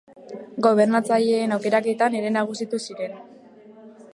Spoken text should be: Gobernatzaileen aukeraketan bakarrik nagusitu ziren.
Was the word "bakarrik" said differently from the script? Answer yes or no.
yes